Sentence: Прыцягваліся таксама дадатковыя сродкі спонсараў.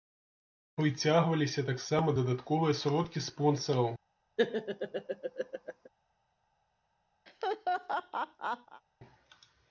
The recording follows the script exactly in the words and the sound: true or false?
false